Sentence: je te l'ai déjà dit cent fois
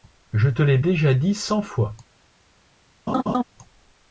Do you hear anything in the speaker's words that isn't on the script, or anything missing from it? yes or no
no